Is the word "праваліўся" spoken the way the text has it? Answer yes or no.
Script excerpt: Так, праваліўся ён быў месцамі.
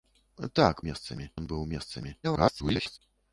no